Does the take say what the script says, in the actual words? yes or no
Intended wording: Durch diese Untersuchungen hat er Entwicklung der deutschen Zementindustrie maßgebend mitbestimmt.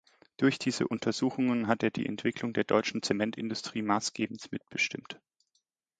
no